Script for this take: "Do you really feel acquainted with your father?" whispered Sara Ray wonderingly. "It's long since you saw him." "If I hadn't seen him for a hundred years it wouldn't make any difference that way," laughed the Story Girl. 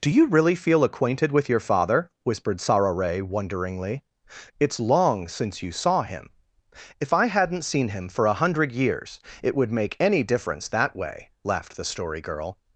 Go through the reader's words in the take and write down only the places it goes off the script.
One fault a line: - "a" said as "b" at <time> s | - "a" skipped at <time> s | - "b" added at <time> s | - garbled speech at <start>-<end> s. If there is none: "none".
- "wouldn't" said as "would" at 9.5 s